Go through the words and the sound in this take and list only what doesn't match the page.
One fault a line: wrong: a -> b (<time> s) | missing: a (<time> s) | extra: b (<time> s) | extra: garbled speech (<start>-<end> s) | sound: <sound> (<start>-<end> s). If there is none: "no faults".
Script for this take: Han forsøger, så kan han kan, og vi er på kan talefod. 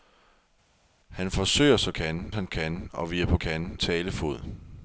no faults